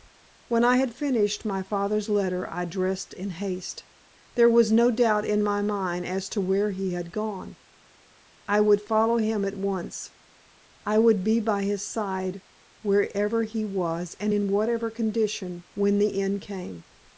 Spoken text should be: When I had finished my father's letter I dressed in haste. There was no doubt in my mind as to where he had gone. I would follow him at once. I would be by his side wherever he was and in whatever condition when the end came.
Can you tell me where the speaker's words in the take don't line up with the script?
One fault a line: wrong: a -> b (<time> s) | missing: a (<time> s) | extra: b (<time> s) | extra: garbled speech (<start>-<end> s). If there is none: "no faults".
no faults